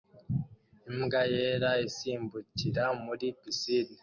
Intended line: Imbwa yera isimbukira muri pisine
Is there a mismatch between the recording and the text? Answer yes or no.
no